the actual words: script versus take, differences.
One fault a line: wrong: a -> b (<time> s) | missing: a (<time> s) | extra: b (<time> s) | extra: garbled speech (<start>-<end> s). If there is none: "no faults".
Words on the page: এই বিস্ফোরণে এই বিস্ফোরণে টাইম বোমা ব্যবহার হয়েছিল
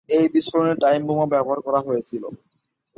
missing: এই বিস্ফোরণে (0.7 s)
extra: করা (1.6 s)